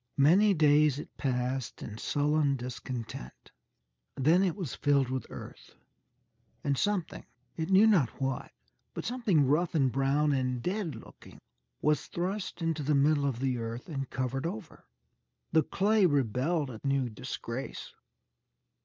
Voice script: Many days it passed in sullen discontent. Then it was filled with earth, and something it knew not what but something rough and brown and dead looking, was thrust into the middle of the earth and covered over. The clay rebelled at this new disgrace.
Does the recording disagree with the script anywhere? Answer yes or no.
yes